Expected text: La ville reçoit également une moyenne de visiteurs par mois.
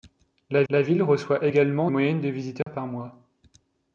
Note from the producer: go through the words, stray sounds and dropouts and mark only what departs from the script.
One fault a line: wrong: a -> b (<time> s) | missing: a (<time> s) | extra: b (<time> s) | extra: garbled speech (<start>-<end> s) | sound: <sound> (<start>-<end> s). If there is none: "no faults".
extra: la (0.7 s)
missing: une (1.9 s)
sound: dropout (2.6-2.7 s)